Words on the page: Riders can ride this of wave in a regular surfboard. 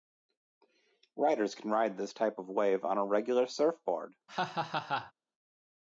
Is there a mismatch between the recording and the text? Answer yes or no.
yes